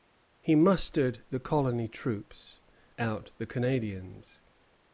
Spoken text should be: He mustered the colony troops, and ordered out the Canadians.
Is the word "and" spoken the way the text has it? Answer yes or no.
no